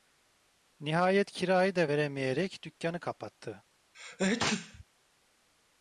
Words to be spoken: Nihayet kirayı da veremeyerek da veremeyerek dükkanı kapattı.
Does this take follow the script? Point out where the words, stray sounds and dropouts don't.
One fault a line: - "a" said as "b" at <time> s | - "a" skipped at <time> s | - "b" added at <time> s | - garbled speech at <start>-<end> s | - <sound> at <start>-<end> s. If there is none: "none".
- "da veremeyerek" skipped at 2.6 s
- sneeze at 3.9-4.8 s